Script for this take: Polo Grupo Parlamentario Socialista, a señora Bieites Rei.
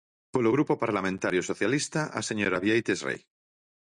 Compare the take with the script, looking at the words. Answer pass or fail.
pass